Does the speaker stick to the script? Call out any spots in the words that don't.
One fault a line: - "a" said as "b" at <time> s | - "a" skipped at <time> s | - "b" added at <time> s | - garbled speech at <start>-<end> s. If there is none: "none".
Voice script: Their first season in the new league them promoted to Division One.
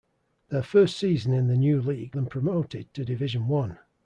none